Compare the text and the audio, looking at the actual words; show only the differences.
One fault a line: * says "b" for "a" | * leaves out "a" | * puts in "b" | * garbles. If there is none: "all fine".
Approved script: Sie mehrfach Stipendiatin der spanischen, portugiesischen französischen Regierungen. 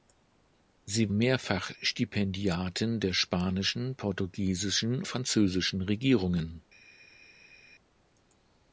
all fine